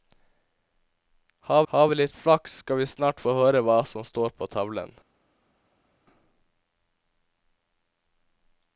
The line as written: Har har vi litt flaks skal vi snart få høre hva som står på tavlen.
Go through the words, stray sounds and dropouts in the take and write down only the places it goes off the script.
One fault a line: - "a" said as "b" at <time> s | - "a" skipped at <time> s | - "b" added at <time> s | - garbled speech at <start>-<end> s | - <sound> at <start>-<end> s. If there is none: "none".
none